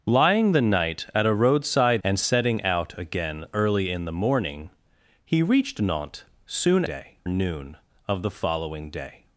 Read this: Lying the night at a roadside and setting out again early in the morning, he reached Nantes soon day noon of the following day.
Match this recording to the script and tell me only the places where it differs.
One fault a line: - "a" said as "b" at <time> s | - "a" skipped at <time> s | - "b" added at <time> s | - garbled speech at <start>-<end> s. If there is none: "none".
none